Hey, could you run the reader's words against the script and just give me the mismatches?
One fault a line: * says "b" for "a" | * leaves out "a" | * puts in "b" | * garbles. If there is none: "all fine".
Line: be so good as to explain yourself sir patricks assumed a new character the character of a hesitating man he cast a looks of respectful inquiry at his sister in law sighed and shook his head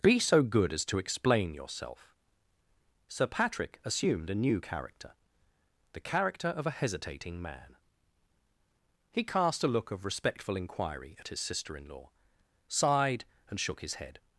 * says "patrick" for "patricks"
* says "look" for "looks"